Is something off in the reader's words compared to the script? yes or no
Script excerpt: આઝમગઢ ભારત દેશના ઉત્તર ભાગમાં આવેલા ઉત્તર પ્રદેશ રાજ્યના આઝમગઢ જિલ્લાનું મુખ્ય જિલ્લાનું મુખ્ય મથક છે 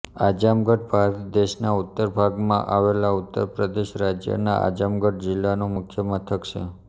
yes